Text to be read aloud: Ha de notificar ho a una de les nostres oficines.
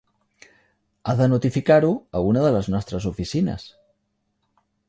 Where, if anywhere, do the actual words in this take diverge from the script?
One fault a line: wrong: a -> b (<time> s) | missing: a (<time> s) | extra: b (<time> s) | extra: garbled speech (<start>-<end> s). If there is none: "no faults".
no faults